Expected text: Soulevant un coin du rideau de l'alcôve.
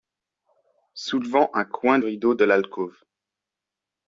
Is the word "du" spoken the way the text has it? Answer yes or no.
no